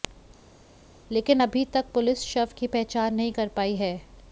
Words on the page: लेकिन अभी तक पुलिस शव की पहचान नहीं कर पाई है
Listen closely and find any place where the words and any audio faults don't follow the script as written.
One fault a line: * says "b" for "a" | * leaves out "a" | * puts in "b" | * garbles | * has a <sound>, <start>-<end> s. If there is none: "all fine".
all fine